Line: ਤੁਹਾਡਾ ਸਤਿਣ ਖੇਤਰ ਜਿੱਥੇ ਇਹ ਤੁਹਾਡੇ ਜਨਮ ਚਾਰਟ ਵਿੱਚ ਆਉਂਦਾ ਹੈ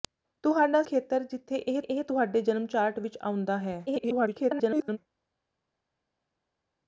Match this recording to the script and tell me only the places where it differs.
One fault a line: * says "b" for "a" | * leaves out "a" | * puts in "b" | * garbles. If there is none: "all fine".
* leaves out "ਸਤਿਣ"
* puts in "ਇਹ"
* garbles